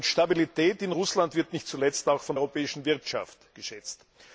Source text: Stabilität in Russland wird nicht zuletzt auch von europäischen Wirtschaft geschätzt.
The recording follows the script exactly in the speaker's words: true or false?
true